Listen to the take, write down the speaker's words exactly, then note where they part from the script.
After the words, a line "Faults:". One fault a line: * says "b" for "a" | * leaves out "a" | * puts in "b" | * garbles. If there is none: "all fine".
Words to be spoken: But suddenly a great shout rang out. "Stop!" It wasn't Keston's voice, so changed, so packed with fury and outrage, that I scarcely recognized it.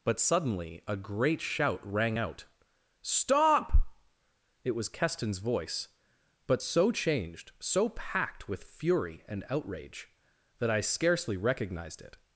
But suddenly a great shout rang out. "Stop!" It was Keston's voice, but so changed, so packed with fury and outrage, that I scarcely recognized it.
Faults:
* says "was" for "wasn't"
* puts in "but"